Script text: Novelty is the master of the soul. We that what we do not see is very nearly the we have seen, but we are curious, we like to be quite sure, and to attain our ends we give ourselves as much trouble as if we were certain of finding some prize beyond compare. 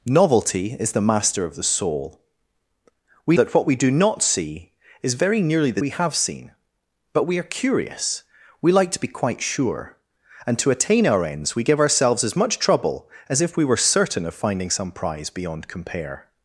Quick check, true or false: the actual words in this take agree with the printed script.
true